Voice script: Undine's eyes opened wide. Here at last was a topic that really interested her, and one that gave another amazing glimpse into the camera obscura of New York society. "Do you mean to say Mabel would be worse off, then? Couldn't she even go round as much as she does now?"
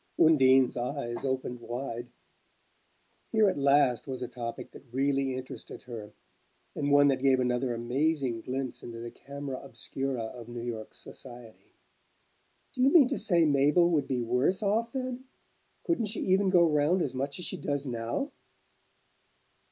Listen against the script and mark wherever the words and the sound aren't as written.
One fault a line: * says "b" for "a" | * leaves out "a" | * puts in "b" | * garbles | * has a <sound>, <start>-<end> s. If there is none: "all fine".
all fine